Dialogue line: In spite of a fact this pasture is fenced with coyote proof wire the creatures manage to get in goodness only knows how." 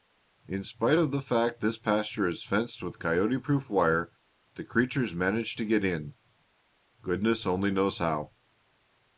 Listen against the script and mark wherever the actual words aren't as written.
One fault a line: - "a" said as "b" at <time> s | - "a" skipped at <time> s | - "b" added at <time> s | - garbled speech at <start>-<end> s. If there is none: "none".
- "a" said as "the" at 1.1 s